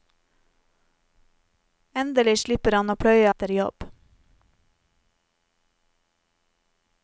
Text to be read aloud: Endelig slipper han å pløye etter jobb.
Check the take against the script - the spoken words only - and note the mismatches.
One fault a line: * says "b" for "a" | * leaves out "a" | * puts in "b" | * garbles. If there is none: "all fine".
all fine